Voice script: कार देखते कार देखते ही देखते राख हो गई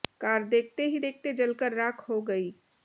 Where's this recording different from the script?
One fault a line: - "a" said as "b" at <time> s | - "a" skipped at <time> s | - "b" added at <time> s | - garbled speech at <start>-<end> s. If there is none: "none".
- "कार" said as "ही" at 0.8 s
- "ही देखते" said as "जलकर" at 1.3 s